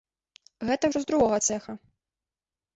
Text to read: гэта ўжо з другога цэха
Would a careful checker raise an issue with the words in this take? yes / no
no